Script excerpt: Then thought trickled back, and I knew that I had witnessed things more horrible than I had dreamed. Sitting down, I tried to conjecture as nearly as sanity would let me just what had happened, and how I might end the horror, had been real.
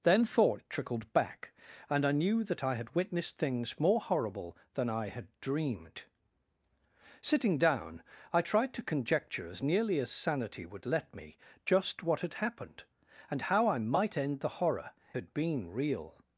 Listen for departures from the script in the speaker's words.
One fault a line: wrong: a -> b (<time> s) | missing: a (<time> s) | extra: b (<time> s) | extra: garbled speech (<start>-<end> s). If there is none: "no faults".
no faults